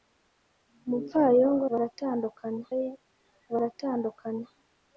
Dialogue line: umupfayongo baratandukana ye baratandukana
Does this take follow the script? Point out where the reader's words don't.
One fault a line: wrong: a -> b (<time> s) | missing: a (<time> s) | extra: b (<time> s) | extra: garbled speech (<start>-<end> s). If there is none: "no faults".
no faults